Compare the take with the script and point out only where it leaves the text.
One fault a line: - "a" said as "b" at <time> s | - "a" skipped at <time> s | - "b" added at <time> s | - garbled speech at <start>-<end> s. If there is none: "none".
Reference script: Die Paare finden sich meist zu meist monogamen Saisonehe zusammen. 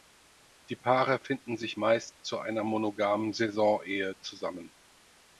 - "meist" said as "einer" at 2.4 s